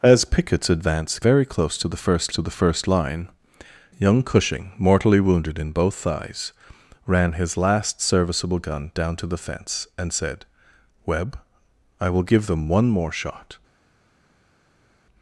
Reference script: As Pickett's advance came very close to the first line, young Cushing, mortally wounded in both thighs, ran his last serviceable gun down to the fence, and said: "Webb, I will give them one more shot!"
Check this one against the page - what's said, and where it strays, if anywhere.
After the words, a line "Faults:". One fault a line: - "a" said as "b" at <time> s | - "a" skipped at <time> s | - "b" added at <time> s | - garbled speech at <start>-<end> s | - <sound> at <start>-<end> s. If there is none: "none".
As Pickett's advance very close to the first to the first line, young Cushing, mortally wounded in both thighs, ran his last serviceable gun down to the fence, and said: "Webb, I will give them one more shot!"
Faults:
- "came" skipped at 1.2 s
- "to the first" added at 2.3 s